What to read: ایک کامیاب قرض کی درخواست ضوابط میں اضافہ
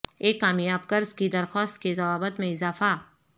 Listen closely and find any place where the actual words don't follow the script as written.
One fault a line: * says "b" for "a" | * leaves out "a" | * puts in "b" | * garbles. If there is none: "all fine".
* puts in "کے"